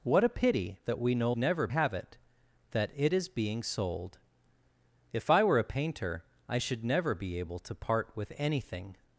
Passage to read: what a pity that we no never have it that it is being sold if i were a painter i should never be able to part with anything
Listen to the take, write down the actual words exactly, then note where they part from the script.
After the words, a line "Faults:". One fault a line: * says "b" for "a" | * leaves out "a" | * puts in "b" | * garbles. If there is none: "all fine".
what a pity that we no never have it that it is being sold if i were a painter i should never be able to part with anything
Faults:
all fine